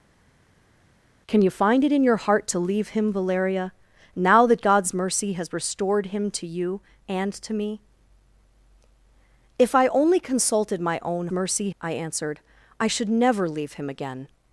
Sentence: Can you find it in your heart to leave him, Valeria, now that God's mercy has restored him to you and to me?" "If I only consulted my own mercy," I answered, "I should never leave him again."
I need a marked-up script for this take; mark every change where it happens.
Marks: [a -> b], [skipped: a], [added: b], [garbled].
Can you find it in your heart to leave him, Valeria, now that God's mercy has restored him to you and to me?" "If I only consulted my own mercy," I answered, "I should never leave him again."